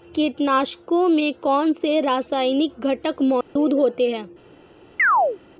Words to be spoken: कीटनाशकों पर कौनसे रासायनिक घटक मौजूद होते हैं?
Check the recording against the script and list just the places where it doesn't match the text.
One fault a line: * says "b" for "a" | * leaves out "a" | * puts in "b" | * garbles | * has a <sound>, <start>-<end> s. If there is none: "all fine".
* says "में" for "पर"
* has a dropout, 3.4-3.6 s
* has a chirp, 5.0-5.4 s